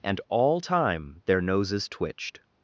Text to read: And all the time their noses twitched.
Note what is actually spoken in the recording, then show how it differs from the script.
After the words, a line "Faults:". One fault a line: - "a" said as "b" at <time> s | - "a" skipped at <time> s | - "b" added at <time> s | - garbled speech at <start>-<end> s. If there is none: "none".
And all time their noses twitched.
Faults:
- "the" skipped at 0.6 s